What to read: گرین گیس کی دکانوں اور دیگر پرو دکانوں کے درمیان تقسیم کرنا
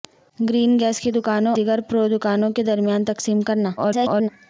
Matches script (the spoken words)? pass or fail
fail